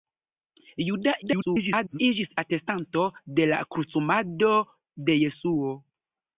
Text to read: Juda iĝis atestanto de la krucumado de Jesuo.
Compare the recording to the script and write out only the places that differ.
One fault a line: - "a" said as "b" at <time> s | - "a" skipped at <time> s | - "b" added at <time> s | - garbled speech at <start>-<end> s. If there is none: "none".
- garbled speech at 1.2-2.0 s